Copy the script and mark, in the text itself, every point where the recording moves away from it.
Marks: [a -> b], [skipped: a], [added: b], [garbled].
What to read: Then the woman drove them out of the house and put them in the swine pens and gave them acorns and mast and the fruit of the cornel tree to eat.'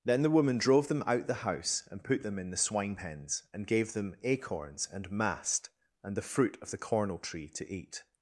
Then the woman drove them out [skipped: of] the house and put them in the swine pens and gave them acorns and mast and the fruit of the cornel tree to eat.'